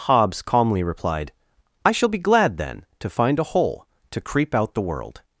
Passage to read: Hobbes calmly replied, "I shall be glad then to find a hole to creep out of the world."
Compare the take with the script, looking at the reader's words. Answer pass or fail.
fail